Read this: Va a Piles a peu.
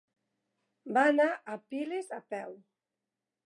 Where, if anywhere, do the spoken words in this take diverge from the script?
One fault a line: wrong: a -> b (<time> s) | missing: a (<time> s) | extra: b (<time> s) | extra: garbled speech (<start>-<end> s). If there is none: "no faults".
extra: anar (1.1 s)